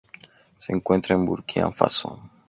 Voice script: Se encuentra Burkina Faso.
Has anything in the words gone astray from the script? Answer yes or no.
yes